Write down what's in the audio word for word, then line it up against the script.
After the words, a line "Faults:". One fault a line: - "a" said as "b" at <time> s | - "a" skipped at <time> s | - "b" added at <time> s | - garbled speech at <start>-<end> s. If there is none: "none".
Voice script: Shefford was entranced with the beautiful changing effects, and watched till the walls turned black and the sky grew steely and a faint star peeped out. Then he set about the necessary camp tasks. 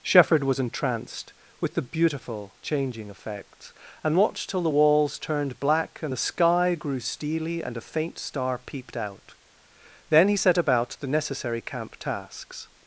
Shefford was entranced with the beautiful changing effects, and watched till the walls turned black and the sky grew steely and a faint star peeped out. Then he set about the necessary camp tasks.
Faults:
none